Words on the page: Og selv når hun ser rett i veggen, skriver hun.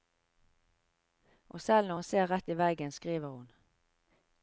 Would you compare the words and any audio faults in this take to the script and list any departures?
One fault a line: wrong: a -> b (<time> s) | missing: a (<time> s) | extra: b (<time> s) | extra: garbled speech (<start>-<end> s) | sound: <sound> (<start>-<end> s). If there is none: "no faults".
no faults